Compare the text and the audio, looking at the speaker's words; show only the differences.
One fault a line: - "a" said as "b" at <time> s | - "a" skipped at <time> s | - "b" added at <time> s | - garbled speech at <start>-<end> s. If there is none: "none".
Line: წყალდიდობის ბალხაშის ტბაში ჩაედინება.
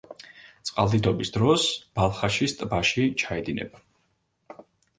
- "დროს" added at 1.3 s